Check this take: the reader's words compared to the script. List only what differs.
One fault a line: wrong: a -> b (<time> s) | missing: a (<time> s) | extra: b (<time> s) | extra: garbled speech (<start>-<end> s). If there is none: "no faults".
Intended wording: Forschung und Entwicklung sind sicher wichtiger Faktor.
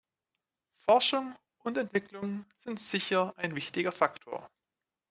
extra: ein (3.4 s)